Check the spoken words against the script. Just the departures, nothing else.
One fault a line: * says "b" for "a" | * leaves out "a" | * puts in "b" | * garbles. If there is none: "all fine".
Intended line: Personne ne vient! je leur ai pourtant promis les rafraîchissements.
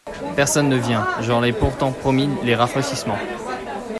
all fine